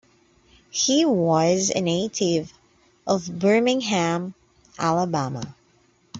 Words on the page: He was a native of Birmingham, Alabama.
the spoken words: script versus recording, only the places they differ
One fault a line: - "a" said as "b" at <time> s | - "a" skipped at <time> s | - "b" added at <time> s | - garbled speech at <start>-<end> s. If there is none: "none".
none